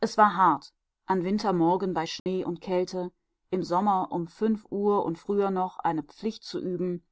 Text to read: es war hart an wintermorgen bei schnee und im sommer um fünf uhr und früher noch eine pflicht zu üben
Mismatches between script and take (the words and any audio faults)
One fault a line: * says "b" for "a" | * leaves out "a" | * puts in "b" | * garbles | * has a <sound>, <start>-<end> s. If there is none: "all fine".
* has a dropout, 2.2-2.3 s
* puts in "kälte"